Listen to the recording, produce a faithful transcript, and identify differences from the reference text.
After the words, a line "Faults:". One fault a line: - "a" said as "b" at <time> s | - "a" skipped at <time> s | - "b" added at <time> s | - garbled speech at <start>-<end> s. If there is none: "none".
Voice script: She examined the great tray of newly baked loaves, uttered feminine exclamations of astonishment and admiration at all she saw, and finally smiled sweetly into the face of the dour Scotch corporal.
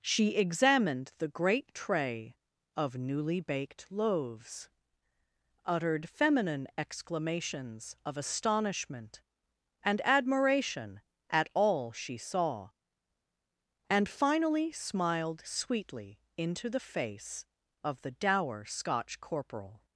She examined the great tray of newly baked loaves, uttered feminine exclamations of astonishment and admiration at all she saw, and finally smiled sweetly into the face of the dour Scotch corporal.
Faults:
none